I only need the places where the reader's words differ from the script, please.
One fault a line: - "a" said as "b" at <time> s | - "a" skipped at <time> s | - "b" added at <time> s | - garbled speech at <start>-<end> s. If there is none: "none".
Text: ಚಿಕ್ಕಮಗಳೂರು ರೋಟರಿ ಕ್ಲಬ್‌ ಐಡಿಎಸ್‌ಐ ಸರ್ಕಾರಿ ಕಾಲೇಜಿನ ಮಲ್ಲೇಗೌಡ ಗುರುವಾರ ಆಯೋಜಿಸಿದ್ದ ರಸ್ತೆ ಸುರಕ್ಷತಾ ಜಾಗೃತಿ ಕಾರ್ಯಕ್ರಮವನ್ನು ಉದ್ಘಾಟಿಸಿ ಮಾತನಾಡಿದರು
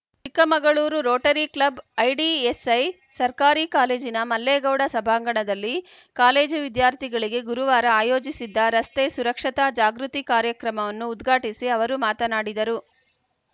- "ಸಭಾಂಗಣದಲ್ಲಿ ಕಾಲೇಜು ವಿದ್ಯಾರ್ಥಿಗಳಿಗೆ" added at 4.9 s
- "ಅವರು" added at 11.8 s